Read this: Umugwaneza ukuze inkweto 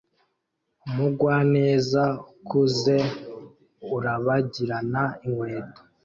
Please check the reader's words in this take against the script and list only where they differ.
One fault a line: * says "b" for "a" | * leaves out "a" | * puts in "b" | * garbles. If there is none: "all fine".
* puts in "urabagirana"